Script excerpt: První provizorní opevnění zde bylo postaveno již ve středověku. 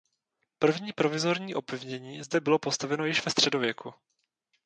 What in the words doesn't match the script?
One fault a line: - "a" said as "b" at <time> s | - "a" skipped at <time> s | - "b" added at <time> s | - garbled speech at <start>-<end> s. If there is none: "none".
none